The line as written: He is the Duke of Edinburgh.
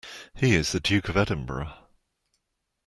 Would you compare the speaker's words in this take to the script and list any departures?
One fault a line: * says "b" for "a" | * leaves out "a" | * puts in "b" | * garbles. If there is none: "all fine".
all fine